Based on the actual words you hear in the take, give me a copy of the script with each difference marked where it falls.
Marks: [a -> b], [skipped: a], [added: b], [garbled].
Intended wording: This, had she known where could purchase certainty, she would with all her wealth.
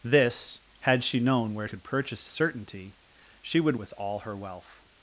This, had she known where could purchase certainty, she would with all her wealth.